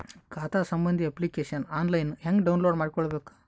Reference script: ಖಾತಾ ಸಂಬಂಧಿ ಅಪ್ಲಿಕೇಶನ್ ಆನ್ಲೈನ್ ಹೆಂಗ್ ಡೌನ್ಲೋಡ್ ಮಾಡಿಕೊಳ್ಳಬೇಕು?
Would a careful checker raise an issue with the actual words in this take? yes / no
no